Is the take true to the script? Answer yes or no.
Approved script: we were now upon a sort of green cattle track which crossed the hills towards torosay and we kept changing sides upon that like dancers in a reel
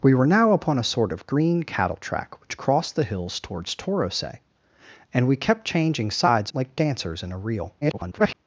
no